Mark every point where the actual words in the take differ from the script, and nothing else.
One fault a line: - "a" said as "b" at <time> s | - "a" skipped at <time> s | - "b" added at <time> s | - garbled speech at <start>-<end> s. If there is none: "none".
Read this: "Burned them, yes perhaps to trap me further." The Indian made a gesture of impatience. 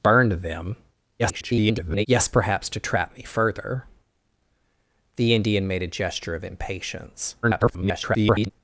- garbled speech at 1.2-2.1 s
- garbled speech at 7.4-8.5 s